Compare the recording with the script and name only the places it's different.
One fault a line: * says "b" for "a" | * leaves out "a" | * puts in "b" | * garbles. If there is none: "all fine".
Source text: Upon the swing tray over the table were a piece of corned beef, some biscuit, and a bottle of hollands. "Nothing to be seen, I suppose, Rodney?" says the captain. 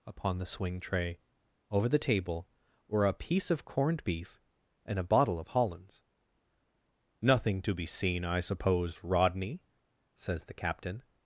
* leaves out "some biscuit"